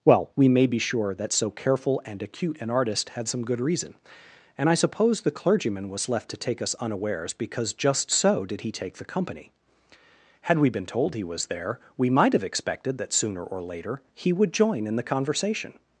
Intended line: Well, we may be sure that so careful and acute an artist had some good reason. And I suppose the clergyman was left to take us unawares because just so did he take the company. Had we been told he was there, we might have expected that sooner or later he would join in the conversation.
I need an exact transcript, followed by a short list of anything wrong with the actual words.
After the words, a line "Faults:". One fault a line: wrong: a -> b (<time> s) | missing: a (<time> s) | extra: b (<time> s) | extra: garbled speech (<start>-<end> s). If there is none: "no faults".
Well, we may be sure that so careful and acute an artist had some good reason. And I suppose the clergyman was left to take us unawares because just so did he take the company. Had we been told he was there, we might have expected that sooner or later he would join in the conversation.
Faults:
no faults